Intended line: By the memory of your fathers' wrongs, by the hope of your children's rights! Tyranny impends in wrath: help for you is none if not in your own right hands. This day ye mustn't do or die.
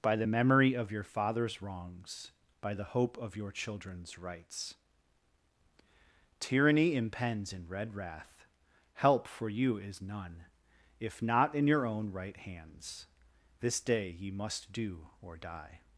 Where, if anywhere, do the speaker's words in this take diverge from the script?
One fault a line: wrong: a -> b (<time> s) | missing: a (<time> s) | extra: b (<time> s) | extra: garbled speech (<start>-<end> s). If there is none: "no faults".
extra: red (7.7 s)
wrong: mustn't -> must (14.3 s)